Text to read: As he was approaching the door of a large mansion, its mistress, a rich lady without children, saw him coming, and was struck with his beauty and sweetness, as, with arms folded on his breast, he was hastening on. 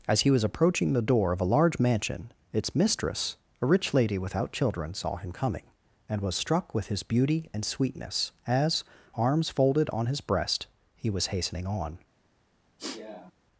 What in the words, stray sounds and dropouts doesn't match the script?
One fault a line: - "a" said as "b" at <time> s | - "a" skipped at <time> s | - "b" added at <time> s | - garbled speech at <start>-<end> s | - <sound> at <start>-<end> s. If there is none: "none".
- "with" skipped at 8.8 s
- sniff at 12.8-13.3 s